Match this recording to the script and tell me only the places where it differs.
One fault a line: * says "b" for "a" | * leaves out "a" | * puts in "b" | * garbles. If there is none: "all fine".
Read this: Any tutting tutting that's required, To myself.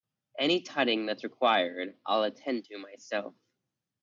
* leaves out "tutting"
* puts in "I'll attend"